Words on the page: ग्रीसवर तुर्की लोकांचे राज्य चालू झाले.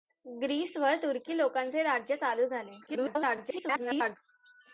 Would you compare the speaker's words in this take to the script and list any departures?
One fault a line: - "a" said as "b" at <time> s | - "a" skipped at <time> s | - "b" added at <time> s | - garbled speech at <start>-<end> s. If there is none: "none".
- garbled speech at 2.9-4.2 s